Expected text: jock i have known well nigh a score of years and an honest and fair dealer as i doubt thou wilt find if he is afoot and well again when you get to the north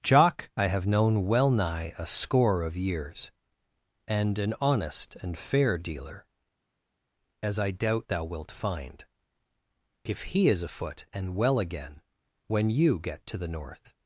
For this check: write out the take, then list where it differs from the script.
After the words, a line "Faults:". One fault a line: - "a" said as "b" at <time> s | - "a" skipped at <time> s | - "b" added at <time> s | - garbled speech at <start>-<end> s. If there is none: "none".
jock i have known well nigh a score of years and an honest and fair dealer as i doubt thou wilt find if he is afoot and well again when you get to the north
Faults:
none